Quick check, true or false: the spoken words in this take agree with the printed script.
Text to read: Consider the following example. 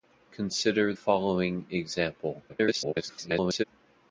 false